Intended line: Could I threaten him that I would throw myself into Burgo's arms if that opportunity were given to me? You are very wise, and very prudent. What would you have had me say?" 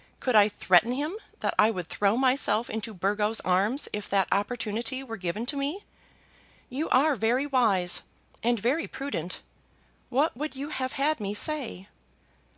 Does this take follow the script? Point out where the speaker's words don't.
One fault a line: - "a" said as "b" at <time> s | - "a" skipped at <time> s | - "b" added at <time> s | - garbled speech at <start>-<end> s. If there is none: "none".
none